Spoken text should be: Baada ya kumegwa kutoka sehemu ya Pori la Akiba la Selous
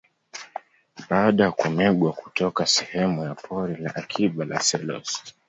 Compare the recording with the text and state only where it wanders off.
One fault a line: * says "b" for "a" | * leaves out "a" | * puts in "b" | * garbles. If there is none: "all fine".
all fine